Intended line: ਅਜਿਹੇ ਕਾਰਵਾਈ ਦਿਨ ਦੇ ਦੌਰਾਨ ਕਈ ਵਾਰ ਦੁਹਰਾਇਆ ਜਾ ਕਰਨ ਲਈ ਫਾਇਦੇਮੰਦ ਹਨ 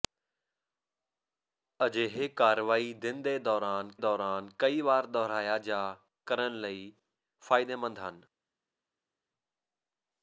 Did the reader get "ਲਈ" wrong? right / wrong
right